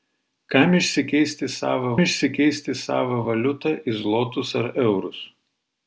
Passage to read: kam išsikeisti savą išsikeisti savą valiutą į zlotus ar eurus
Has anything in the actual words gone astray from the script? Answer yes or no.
no